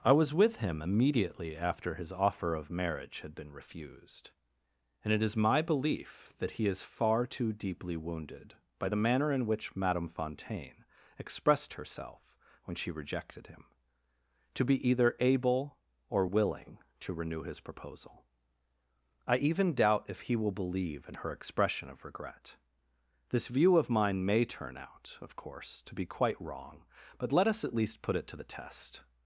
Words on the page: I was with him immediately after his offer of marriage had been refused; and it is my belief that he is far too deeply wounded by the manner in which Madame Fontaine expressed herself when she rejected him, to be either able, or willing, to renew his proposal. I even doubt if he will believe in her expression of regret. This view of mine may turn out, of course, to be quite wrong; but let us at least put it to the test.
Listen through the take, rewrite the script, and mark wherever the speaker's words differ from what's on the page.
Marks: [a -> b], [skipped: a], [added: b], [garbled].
I was with him immediately after his offer of marriage had been refused; and it is my belief that he is far too deeply wounded by the manner in which Madame Fontaine expressed herself when she rejected him, to be either able, or willing, to renew his proposal. I even doubt if he will believe in her expression of regret. This view of mine may turn out, of course, to be quite wrong; but let us at least put it to the test.